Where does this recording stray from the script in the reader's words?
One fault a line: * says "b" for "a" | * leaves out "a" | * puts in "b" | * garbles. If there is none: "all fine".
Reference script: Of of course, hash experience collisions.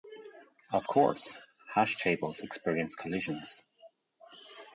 * leaves out "of"
* puts in "tables"